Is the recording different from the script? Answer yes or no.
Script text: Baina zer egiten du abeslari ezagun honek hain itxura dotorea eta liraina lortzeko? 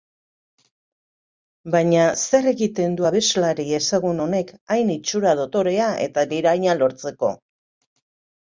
no